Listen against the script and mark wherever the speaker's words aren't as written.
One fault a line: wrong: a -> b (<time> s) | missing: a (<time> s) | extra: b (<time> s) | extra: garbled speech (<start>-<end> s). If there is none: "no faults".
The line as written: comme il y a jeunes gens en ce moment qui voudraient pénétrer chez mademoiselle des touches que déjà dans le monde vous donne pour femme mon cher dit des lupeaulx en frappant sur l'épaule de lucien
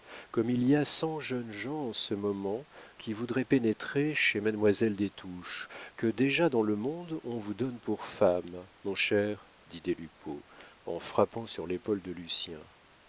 extra: cent (0.8 s)
extra: on (7.2 s)